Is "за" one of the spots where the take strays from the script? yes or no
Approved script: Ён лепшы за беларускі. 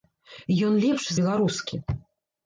yes